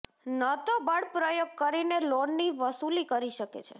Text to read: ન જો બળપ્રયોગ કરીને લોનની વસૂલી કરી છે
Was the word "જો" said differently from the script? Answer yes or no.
yes